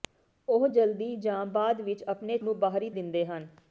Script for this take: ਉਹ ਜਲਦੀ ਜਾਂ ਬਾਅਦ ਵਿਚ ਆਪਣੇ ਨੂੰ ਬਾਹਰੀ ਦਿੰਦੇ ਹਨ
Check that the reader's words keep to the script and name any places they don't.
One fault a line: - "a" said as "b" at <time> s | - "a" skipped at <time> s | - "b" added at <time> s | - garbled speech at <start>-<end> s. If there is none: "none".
none